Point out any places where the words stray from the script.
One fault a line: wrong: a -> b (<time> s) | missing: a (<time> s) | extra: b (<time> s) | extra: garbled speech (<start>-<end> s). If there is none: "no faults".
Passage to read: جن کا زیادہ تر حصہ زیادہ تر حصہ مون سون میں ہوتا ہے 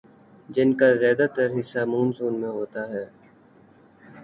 missing: زیادہ تر حصہ (1.8 s)